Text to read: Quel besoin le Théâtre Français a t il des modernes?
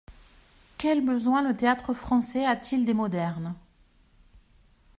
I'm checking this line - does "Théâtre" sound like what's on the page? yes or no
yes